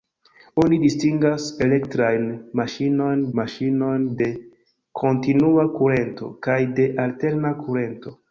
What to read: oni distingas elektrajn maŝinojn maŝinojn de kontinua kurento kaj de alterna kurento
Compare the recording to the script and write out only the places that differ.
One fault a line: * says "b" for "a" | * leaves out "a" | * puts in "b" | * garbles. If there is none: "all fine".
all fine